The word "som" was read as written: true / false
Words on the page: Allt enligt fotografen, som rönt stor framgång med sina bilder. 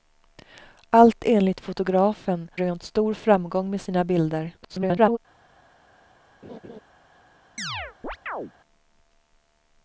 false